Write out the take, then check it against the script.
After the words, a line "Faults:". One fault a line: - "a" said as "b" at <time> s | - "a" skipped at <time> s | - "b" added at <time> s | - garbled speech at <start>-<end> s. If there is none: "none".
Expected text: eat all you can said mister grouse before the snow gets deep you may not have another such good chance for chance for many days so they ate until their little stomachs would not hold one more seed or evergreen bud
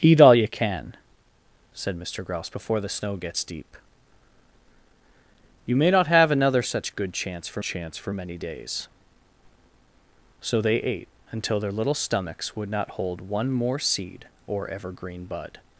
eat all you can said mister grouse before the snow gets deep you may not have another such good chance for chance for many days so they ate until their little stomachs would not hold one more seed or evergreen bud
Faults:
none